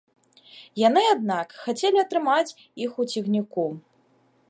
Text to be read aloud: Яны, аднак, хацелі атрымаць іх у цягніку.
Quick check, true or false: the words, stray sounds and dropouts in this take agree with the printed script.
true